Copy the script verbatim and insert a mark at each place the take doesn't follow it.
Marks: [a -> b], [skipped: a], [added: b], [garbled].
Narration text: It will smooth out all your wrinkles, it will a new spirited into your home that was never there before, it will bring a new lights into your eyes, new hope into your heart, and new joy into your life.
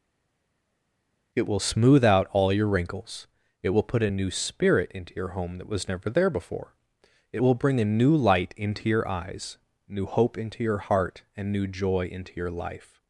It will smooth out all your wrinkles, it will [added: put] a new [spirited -> spirit] into your home that was never there before, it will bring a new [lights -> light] into your eyes, new hope into your heart, and new joy into your life.